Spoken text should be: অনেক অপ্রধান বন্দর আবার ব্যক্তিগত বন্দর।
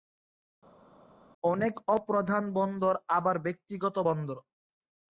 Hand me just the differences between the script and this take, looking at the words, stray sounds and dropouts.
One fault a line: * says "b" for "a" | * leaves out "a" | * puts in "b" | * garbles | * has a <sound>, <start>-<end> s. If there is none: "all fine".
all fine